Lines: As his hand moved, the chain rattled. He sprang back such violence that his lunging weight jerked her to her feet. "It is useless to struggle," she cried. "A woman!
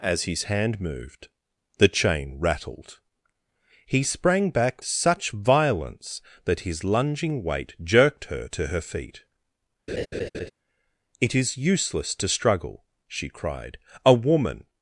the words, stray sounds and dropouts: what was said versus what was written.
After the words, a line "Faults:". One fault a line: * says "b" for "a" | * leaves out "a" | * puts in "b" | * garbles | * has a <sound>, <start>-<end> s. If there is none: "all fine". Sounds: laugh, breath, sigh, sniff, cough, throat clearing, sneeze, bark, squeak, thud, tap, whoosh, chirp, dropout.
As his hand moved, the chain rattled. He sprang back such violence that his lunging weight jerked her to her feet. "It is useless to struggle," she cried. "A woman!
Faults:
* has a laugh, 9.9-10.5 s